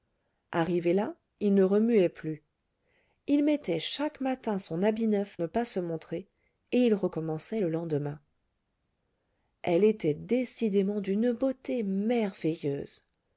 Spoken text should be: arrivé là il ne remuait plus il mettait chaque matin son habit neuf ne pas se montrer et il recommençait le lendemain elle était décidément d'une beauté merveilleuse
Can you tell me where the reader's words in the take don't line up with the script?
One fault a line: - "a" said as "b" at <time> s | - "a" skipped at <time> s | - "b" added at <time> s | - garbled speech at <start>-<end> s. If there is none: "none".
none